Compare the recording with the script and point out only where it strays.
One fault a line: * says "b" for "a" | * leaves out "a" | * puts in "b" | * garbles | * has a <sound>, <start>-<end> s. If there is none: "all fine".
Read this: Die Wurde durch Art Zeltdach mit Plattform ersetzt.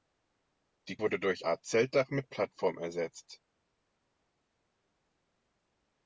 all fine